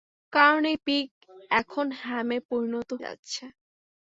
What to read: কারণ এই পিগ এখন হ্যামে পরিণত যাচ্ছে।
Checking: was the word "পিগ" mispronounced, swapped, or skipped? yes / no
no